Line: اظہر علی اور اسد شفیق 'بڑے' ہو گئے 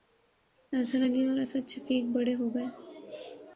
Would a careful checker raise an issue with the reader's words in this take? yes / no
no